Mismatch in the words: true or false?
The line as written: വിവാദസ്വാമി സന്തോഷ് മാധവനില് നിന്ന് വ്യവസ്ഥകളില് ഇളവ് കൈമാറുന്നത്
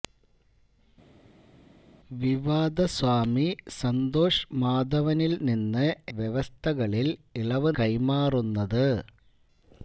false